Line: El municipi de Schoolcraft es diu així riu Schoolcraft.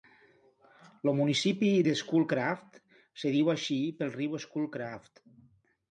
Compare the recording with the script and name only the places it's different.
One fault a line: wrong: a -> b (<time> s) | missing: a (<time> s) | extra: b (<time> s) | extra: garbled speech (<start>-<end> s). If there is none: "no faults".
extra: pel (4.0 s)